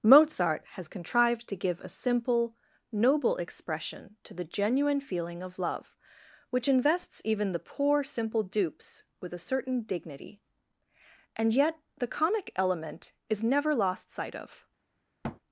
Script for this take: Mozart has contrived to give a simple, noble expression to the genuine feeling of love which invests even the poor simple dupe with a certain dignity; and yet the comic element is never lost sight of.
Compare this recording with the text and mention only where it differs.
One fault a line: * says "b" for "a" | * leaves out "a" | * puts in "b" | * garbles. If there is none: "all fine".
* says "dupes" for "dupe"